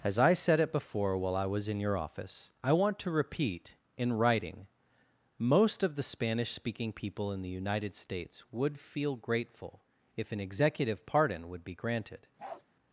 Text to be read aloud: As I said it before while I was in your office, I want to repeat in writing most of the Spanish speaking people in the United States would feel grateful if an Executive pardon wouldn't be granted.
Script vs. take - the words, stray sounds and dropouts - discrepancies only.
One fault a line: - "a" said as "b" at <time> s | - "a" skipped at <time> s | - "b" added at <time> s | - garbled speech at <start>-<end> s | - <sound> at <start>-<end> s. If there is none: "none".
- "wouldn't" said as "would" at 11.5 s
- bark at 12.4-12.6 s